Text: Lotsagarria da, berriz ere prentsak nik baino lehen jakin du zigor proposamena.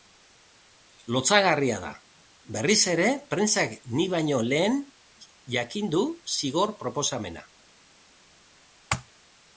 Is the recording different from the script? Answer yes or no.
no